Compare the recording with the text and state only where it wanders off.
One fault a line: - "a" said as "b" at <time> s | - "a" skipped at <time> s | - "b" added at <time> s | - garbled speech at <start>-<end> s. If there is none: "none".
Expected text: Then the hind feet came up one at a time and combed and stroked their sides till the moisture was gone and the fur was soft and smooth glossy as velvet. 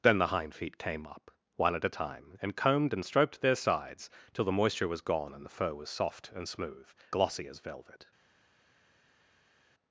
none